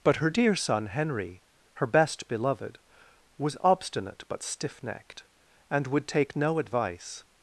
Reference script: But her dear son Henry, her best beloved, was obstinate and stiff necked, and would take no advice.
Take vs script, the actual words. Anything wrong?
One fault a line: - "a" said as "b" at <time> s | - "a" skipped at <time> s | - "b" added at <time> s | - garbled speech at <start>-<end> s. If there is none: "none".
- "and" said as "but" at 4.3 s